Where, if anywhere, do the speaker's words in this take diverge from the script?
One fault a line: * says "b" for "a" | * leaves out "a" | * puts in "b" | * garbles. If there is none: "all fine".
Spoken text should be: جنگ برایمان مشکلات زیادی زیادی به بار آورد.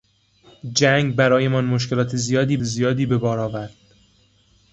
all fine